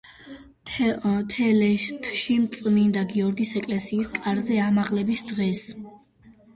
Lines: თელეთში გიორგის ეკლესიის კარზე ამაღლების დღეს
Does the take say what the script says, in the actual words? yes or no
no